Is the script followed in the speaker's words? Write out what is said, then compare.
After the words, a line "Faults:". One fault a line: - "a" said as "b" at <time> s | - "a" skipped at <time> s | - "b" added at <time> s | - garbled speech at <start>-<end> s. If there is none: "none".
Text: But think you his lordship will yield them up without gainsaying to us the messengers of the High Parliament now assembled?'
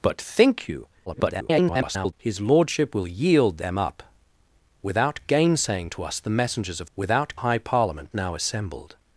But think you [garbled] his lordship will yield them up without gainsaying to us the messengers of without High Parliament now assembled?'
Faults:
- garbled speech at 1.1-2.1 s
- "the" said as "without" at 6.9 s